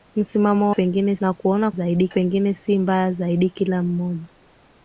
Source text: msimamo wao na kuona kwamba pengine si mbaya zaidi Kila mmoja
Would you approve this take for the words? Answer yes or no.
no